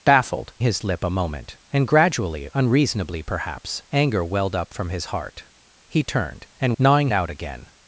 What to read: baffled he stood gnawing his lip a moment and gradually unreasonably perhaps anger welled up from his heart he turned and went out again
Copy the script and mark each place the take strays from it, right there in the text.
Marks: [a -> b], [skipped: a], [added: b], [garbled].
baffled [skipped: he stood gnawing] his lip a moment and gradually unreasonably perhaps anger welled up from his heart he turned and [went -> gnawing] out again